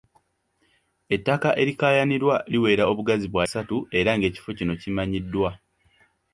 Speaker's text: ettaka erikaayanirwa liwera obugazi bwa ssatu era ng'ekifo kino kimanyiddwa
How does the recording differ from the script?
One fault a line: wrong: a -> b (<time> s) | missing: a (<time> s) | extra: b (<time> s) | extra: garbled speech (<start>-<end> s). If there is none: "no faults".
no faults